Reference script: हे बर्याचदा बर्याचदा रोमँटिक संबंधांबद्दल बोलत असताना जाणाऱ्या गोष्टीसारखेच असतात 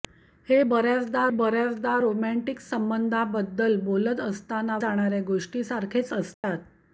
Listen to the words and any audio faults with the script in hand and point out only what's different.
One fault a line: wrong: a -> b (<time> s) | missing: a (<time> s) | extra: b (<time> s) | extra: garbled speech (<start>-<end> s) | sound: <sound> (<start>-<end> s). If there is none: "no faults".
sound: dropout (6.3-6.4 s)